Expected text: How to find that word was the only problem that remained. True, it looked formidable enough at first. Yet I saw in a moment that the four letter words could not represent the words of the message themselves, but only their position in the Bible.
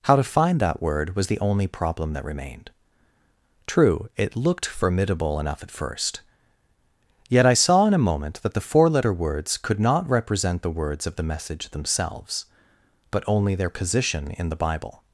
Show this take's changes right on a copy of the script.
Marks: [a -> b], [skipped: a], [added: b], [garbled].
How to find that word was the only problem that remained. True, it looked formidable enough at first. Yet I saw in a moment that the four letter words could not represent the words of the message themselves, but only their position in the Bible.